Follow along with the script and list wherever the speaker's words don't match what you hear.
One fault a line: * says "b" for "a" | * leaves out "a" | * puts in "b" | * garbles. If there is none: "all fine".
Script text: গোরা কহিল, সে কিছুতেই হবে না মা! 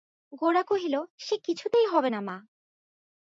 all fine